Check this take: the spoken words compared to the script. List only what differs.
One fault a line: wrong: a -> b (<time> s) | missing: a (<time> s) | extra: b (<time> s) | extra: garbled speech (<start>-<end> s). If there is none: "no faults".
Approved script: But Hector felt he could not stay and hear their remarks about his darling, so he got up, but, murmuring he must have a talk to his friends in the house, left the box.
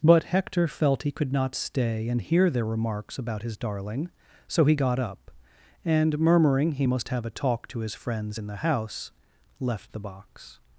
wrong: but -> and (5.8 s)